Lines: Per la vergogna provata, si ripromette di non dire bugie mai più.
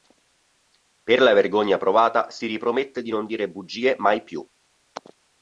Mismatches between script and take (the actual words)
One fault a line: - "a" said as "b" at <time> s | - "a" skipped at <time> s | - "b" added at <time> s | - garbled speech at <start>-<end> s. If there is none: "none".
none